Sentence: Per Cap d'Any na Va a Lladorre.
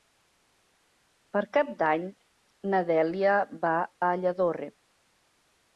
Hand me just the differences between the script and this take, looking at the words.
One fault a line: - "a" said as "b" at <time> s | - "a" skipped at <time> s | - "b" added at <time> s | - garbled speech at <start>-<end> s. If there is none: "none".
- "Dèlia" added at 2.9 s